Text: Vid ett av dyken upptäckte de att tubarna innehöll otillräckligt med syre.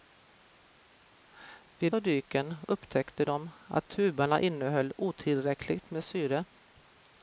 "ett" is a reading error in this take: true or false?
true